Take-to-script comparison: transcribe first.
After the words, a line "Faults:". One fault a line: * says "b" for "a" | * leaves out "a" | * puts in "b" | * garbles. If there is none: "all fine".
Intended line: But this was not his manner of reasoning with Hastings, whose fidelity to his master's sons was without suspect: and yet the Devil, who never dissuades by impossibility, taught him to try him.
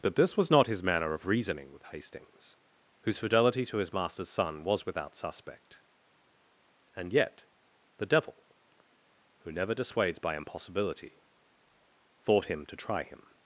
But this was not his manner of reasoning with Hastings, whose fidelity to his master's son was without suspect: and yet the Devil, who never dissuades by impossibility, thought him to try him.
Faults:
* says "son" for "sons"
* says "thought" for "taught"